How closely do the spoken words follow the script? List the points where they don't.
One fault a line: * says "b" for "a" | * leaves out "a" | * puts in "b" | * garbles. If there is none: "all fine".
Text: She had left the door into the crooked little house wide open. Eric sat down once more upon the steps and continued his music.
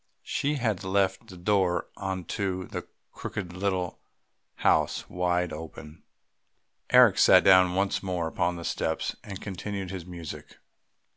all fine